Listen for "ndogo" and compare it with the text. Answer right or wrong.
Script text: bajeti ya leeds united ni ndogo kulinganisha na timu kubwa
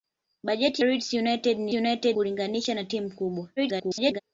wrong